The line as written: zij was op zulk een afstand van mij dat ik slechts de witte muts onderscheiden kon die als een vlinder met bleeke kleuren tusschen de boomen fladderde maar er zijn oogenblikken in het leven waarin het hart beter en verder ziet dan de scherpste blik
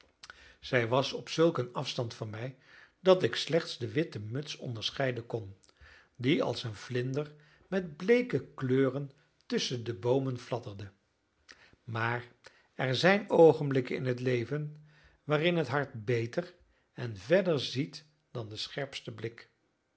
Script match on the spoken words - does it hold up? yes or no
yes